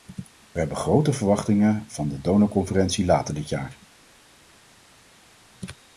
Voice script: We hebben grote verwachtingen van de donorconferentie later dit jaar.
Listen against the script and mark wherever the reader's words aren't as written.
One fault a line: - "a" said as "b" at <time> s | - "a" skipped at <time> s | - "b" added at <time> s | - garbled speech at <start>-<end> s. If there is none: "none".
none